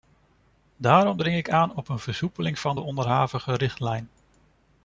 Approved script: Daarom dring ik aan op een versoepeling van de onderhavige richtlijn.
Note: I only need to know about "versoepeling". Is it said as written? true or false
true